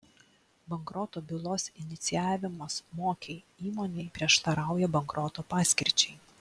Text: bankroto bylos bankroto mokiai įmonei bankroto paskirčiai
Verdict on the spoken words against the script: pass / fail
fail